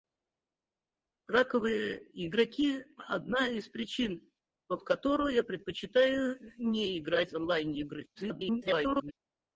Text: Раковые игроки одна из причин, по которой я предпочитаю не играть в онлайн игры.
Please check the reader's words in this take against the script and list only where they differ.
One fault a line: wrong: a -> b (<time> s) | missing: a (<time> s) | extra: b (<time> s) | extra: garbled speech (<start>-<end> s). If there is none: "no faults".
extra: garbled speech (8.2-9.1 s)